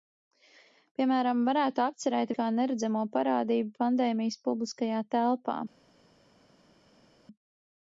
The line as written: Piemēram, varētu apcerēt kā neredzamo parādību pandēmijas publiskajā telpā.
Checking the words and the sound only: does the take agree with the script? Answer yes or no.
yes